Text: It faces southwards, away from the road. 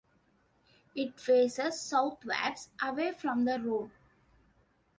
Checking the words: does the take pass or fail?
pass